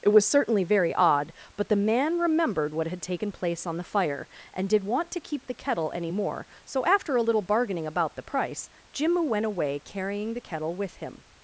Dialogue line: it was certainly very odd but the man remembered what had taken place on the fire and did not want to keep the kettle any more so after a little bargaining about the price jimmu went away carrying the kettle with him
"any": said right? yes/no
yes